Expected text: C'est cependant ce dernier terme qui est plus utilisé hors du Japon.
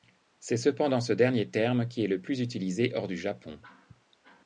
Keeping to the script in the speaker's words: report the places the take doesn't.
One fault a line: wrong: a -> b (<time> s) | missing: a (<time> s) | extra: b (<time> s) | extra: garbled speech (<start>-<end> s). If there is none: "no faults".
extra: le (2.1 s)